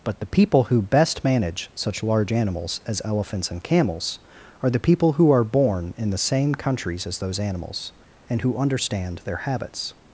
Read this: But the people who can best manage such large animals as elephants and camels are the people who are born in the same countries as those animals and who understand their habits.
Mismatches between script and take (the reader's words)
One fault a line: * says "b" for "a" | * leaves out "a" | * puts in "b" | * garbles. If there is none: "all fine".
* leaves out "can"